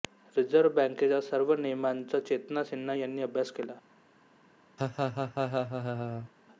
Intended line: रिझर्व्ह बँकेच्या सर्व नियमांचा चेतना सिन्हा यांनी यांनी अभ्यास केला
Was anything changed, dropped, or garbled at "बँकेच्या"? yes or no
no